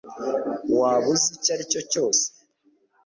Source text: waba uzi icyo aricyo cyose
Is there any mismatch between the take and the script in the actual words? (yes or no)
no